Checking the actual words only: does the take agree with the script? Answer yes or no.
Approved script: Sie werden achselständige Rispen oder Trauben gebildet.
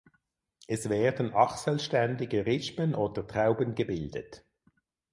no